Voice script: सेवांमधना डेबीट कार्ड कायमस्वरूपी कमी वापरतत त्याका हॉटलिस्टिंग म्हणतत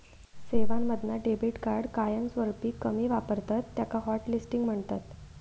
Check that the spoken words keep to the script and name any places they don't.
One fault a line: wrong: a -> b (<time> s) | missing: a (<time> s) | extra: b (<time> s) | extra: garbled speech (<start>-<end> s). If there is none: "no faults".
no faults